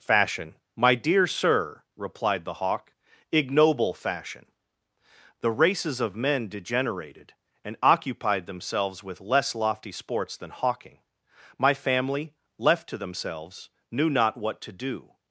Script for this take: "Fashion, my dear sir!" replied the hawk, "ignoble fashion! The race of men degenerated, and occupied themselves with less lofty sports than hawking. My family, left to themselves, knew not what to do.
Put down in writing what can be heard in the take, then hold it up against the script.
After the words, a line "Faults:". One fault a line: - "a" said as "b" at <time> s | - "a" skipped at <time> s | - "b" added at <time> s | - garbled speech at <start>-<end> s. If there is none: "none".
"Fashion, my dear sir!" replied the hawk, "ignoble fashion! The races of men degenerated, and occupied themselves with less lofty sports than hawking. My family, left to themselves, knew not what to do.
Faults:
- "race" said as "races" at 5.5 s